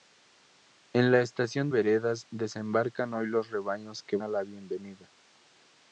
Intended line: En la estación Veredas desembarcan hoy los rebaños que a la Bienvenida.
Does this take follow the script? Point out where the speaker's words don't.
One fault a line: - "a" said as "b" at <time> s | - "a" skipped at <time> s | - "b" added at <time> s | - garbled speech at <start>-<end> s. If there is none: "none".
none